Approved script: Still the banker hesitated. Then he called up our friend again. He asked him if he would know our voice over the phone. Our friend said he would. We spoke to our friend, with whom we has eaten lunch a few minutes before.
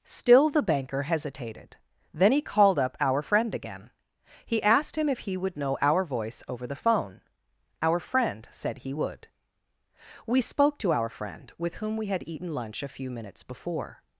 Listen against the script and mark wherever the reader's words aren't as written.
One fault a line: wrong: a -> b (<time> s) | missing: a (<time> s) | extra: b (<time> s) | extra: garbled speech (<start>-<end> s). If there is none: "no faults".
wrong: has -> had (12.1 s)